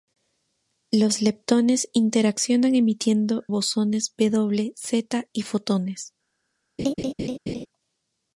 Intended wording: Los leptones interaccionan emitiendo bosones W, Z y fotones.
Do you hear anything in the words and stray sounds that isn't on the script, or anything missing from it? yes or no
yes